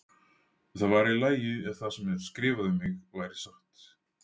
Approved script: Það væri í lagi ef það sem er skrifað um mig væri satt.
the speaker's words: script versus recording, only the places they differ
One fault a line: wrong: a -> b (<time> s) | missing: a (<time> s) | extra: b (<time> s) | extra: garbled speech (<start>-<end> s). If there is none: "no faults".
no faults